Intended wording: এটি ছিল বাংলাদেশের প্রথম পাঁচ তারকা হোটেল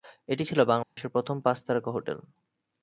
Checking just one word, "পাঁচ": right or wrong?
right